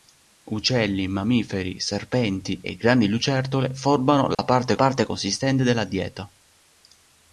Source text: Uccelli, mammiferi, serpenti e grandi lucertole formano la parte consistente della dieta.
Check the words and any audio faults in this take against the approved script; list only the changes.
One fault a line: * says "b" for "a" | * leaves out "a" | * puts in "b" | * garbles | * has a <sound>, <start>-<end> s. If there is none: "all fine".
* has a dropout, 4.3-4.4 s
* puts in "parte"